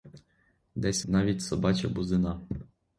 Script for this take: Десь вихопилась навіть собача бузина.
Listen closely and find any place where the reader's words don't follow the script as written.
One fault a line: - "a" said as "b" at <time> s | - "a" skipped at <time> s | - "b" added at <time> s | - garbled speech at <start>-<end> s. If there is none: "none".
- "вихопилась" skipped at 1.1 s